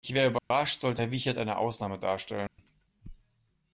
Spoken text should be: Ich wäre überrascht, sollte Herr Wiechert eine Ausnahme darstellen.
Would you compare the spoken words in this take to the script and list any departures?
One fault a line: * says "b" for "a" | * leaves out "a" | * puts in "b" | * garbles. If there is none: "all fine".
all fine